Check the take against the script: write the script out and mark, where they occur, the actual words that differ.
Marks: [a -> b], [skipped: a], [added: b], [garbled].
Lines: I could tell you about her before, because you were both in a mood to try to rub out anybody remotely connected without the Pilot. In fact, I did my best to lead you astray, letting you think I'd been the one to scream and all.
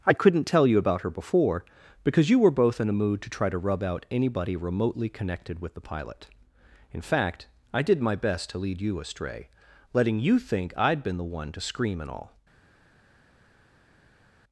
I [could -> couldn't] tell you about her before, because you were both in a mood to try to rub out anybody remotely connected [without -> with] the Pilot. In fact, I did my best to lead you astray, letting you think I'd been the one to scream and all.